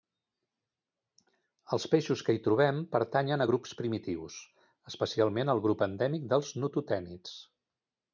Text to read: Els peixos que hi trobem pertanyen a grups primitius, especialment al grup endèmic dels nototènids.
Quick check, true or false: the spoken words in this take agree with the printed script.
true